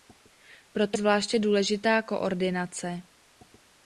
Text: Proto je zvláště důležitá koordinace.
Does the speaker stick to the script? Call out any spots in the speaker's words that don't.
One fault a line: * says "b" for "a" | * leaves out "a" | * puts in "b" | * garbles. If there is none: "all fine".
* leaves out "je"